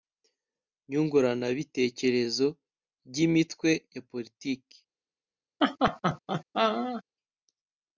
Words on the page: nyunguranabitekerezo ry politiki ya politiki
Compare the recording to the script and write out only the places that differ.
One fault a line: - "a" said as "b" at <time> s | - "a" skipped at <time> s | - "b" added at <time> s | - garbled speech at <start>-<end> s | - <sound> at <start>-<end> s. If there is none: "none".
- "politiki" said as "imitwe" at 3.2 s
- laugh at 5.6-7.0 s